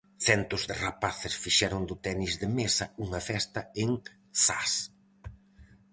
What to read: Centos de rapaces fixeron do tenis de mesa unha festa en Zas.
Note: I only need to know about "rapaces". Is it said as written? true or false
true